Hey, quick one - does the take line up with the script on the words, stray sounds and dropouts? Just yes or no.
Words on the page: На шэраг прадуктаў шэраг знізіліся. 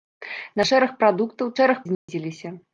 no